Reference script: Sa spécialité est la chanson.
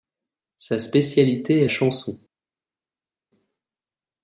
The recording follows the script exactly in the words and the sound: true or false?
false